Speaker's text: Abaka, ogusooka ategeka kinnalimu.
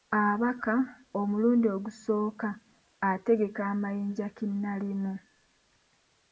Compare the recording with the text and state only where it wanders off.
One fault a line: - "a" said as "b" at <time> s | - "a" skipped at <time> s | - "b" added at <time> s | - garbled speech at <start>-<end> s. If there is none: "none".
- "omulundi" added at 1.2 s
- "amayinja" added at 3.7 s